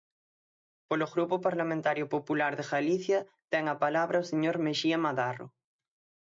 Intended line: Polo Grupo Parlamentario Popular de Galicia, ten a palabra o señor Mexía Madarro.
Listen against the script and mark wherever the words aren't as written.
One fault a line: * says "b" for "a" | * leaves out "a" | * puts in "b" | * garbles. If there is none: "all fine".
all fine